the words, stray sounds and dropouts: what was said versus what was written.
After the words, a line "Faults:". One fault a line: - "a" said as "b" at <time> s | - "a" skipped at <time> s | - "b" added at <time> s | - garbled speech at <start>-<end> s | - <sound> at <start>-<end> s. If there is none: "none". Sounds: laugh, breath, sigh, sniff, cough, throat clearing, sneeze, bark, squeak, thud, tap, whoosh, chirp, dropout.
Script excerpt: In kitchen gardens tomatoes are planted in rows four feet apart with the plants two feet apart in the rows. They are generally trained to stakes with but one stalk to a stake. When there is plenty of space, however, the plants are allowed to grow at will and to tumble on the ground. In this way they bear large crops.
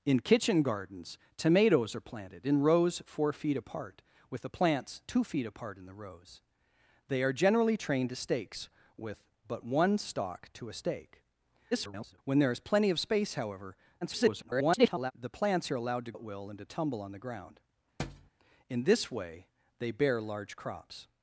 In kitchen gardens tomatoes are planted in rows four feet apart with the plants two feet apart in the rows. They are generally trained to stakes with but one stalk to a stake. [garbled] When there is plenty of space, however, [garbled] the plants are allowed to at will and to tumble on the ground. In this way they bear large crops.
Faults:
- garbled speech at 11.7-12.2 s
- garbled speech at 14.0-15.1 s
- "grow" skipped at 16.1 s
- thud at 18.0-18.3 s